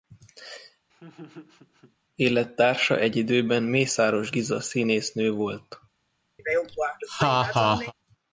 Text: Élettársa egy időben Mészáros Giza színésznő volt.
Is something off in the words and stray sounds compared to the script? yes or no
yes